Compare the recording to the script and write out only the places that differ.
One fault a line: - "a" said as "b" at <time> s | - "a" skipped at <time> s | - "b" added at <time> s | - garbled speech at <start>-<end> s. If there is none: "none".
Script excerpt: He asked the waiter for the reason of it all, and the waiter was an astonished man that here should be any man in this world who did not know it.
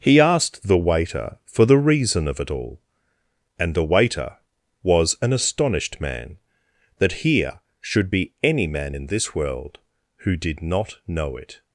none